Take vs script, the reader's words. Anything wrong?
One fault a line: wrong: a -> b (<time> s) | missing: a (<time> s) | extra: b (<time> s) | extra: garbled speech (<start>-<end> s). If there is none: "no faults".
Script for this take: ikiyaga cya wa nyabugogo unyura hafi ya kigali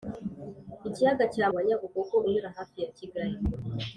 no faults